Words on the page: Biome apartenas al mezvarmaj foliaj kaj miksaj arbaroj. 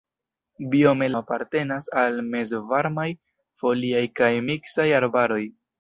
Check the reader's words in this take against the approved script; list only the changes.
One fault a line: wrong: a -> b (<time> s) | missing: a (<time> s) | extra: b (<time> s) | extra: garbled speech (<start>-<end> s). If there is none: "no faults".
no faults